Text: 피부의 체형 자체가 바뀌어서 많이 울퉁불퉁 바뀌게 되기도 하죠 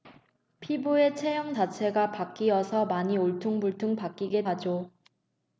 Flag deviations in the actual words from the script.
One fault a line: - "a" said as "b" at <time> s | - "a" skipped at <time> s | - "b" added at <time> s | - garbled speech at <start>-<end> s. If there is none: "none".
- "되기도" skipped at 4.4 s